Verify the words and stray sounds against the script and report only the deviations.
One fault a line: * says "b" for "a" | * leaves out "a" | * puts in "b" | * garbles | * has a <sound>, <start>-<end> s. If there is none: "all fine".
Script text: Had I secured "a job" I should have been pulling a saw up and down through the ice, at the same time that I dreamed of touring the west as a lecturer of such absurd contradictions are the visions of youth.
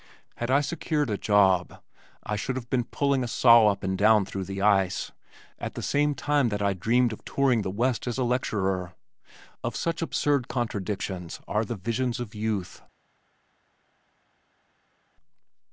all fine